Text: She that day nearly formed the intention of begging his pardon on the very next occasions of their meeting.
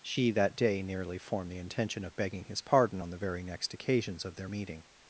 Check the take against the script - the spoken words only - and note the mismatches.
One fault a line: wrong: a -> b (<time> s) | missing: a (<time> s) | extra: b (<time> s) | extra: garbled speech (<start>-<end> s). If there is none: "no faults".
no faults